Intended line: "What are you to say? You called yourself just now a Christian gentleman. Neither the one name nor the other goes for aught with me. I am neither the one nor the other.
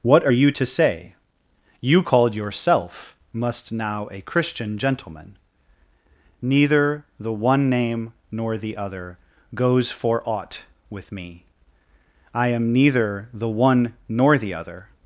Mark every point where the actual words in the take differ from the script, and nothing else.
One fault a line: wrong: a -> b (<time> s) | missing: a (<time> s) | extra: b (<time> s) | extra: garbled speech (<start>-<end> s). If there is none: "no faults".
wrong: just -> must (3.3 s)